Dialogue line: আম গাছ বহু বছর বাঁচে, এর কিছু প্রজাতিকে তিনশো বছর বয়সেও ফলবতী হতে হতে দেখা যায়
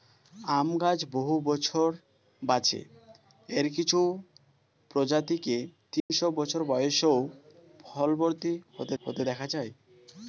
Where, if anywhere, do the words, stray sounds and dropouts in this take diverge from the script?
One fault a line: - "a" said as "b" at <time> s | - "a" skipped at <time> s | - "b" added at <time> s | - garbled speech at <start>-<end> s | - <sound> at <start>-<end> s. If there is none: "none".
- dropout at 6.0-6.1 s